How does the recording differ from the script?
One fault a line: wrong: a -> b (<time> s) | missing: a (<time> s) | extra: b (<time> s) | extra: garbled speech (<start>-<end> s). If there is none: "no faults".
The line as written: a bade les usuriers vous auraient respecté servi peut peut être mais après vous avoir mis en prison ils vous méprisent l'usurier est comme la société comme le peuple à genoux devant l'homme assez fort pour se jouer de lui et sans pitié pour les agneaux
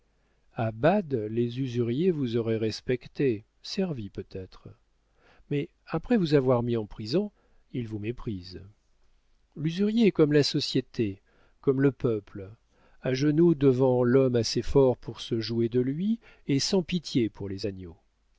missing: peut (4.2 s)